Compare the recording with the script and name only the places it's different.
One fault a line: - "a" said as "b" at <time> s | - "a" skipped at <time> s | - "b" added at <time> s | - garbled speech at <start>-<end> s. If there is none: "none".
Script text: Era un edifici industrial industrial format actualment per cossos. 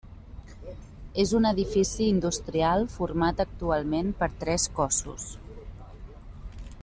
- "Era" said as "És" at 1.2 s
- "industrial" skipped at 2.9 s
- "tres" added at 4.4 s